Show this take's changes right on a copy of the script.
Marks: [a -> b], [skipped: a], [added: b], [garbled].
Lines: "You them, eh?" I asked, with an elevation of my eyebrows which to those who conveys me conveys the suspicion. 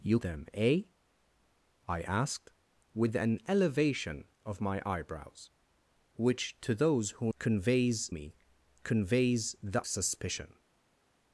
"You them, eh?" I asked, with an elevation of my eyebrows which to those who conveys me conveys the suspicion.